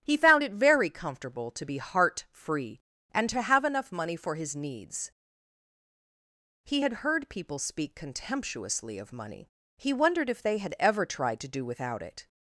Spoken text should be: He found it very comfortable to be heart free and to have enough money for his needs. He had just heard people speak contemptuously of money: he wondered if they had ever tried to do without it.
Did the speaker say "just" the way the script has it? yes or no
no